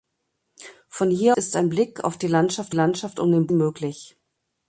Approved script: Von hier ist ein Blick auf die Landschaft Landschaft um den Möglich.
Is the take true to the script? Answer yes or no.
yes